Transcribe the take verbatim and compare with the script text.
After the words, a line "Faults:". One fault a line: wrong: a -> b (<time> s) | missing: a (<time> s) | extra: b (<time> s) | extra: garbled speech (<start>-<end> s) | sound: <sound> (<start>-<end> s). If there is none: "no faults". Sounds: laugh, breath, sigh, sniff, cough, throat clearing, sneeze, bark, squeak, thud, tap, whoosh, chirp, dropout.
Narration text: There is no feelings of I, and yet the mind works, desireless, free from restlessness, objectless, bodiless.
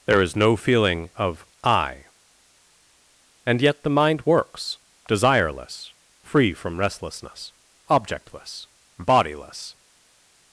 There is no feeling of I, and yet the mind works, desireless, free from restlessness, objectless, bodiless.
Faults:
wrong: feelings -> feeling (0.6 s)